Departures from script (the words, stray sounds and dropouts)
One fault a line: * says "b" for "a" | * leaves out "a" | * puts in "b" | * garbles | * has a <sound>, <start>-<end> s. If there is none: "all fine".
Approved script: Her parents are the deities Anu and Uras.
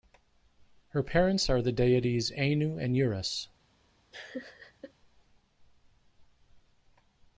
* has a laugh, 4.1-4.9 s